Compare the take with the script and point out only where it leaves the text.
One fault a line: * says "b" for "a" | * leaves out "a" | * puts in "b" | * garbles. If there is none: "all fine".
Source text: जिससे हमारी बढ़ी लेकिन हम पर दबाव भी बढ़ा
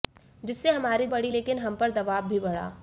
all fine